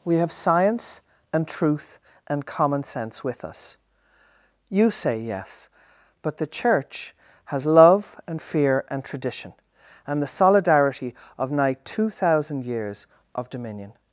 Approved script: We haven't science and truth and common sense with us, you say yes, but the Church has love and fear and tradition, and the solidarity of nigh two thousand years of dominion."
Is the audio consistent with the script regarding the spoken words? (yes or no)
no